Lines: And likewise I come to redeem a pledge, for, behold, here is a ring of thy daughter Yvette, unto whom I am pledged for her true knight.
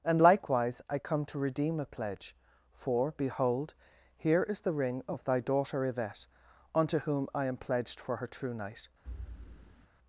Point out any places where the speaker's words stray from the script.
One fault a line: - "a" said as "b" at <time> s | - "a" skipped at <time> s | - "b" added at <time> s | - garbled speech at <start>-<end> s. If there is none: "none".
- "a" said as "the" at 4.6 s